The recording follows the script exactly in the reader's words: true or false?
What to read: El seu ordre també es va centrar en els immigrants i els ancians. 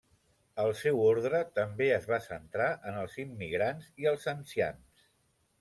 true